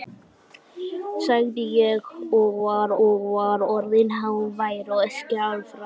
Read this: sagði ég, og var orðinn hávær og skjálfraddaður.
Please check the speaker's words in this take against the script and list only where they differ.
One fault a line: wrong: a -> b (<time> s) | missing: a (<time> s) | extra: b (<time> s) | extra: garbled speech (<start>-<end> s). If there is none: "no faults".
extra: og var (3.1 s)